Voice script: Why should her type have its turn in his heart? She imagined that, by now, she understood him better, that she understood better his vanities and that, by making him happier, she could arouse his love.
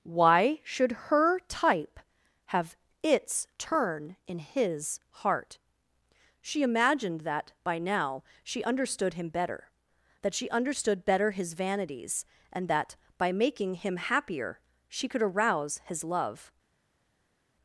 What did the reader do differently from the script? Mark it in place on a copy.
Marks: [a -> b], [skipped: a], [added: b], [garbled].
Why should her type have its turn in his heart? She imagined that, by now, she understood him better, that she understood better his vanities and that, by making him happier, she could arouse his love.